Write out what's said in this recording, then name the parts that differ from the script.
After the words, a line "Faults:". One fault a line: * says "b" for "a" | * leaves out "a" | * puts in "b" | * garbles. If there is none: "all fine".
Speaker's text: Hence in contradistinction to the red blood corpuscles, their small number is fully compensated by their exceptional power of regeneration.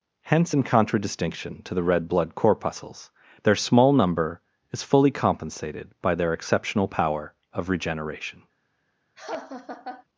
Hence in contradistinction to the red blood corpuscles, their small number is fully compensated by their exceptional power of regeneration.
Faults:
all fine